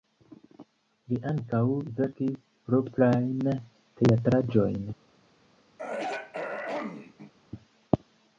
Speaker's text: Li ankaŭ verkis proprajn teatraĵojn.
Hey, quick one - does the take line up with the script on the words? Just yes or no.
yes